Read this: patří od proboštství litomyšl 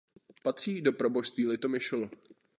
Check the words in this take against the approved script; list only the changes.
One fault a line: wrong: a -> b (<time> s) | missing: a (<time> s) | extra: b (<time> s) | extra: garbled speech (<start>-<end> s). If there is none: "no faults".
wrong: od -> do (0.8 s)